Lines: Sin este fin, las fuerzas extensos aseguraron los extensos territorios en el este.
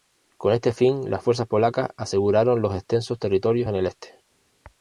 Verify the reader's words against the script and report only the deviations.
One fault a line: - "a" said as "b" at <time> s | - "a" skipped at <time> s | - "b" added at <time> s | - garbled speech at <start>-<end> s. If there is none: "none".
- "Sin" said as "Con" at 0.3 s
- "extensos" said as "polacas" at 1.4 s